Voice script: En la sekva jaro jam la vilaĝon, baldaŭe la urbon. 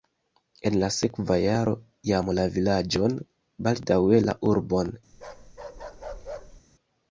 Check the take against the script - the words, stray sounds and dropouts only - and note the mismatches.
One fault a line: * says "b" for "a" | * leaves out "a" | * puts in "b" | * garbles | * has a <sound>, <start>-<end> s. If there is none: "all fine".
* has a bark, 5.1-6.6 s